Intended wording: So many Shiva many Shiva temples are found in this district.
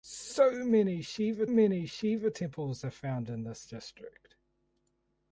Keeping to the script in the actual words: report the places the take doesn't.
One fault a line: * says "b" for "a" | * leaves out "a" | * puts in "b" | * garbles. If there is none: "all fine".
all fine